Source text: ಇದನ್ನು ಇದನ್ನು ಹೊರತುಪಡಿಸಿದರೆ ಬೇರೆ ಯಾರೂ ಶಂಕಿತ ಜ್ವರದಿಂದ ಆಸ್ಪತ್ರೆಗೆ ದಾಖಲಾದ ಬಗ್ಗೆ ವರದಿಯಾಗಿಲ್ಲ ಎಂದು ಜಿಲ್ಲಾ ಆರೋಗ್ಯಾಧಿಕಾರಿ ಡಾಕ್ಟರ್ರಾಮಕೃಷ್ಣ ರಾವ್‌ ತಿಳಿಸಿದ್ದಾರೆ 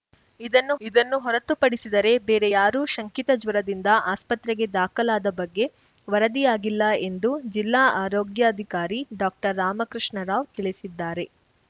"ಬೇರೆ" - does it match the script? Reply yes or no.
yes